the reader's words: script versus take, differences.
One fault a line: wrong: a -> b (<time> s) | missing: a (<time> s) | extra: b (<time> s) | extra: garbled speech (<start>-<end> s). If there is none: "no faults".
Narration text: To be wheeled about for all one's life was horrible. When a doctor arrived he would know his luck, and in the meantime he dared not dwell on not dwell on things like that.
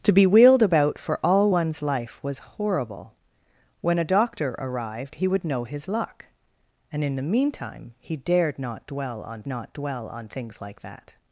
no faults